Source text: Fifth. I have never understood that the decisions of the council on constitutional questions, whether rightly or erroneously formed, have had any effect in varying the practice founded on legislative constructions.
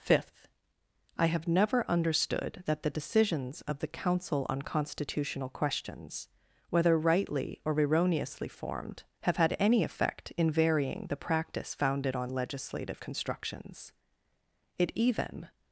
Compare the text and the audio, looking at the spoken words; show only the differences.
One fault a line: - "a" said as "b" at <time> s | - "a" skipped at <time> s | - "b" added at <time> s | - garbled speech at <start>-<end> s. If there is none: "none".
- "It even" added at 14.8 s